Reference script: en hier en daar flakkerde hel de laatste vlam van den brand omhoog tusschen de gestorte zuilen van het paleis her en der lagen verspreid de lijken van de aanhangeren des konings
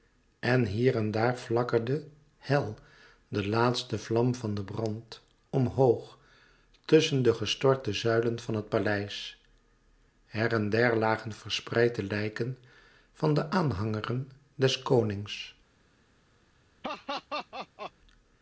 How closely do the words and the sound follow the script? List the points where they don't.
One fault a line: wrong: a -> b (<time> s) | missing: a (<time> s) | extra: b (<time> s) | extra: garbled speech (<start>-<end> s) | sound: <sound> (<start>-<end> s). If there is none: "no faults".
sound: laugh (16.8-17.9 s)